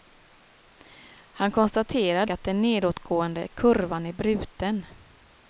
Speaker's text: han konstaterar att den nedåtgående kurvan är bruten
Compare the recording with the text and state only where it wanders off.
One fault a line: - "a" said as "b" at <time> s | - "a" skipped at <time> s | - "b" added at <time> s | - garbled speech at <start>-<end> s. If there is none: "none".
none